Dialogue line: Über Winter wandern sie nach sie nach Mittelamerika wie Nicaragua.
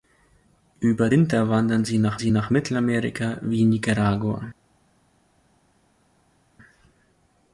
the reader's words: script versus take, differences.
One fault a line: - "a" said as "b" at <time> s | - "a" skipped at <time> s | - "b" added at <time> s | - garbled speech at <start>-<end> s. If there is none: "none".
none